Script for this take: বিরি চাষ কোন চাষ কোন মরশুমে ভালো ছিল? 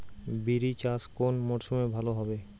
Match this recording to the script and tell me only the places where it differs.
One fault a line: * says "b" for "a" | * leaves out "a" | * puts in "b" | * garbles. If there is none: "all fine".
* leaves out "চাষ কোন"
* says "হবে" for "ছিল"